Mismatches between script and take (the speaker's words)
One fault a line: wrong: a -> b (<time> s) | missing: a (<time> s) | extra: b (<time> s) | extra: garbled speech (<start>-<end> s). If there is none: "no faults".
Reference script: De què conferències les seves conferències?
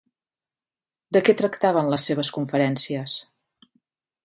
wrong: conferències -> tractaven (1.4 s)